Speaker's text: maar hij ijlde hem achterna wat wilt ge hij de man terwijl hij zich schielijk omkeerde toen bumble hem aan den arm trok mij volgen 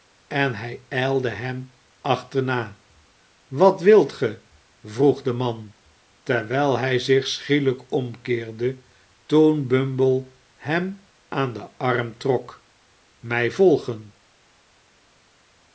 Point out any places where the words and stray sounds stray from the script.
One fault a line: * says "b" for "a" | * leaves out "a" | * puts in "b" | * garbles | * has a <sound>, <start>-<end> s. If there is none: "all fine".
* says "en" for "maar"
* says "vroeg" for "hij"